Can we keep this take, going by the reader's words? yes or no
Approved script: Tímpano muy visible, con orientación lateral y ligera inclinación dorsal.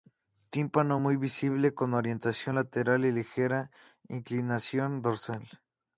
yes